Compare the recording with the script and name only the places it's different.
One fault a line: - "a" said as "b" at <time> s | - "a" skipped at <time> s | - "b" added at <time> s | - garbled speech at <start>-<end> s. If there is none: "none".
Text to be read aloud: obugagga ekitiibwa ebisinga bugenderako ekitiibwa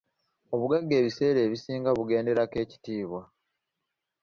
- "ekitiibwa" said as "ebiseera" at 1.0 s